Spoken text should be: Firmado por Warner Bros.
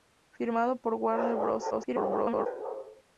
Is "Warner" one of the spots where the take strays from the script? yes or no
no